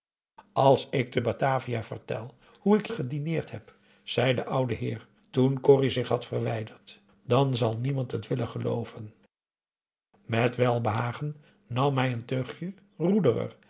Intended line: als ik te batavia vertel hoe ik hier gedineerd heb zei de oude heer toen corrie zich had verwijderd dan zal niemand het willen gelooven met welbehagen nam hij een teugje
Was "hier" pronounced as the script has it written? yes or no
no